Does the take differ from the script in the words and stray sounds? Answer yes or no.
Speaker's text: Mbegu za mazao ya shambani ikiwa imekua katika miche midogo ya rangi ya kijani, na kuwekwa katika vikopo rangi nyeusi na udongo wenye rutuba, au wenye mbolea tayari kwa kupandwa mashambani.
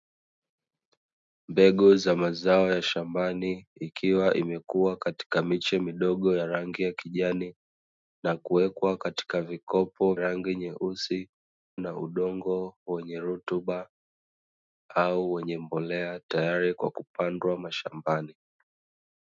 no